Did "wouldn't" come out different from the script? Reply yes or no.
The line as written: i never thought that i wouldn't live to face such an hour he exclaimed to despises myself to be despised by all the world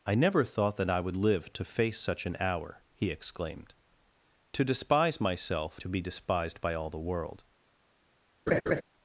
yes